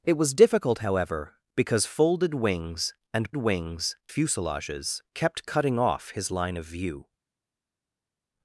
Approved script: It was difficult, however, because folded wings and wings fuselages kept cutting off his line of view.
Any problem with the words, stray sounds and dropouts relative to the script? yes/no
no